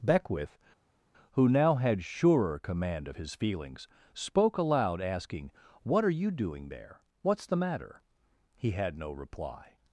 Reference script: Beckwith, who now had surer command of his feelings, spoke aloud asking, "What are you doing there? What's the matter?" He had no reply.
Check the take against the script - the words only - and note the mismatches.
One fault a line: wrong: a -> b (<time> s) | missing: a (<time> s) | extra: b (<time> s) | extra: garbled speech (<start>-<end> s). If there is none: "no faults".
no faults